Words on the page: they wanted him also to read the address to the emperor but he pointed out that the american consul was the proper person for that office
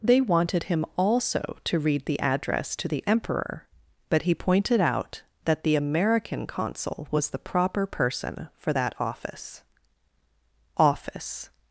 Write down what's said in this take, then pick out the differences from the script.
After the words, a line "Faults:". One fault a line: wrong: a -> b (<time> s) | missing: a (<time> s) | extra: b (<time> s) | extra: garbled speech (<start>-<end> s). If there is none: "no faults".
they wanted him also to read the address to the emperor but he pointed out that the american consul was the proper person for that office office
Faults:
extra: office (10.8 s)